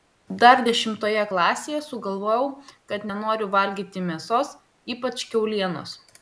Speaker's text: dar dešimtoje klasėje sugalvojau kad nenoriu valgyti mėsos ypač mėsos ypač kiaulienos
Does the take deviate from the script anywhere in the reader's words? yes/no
yes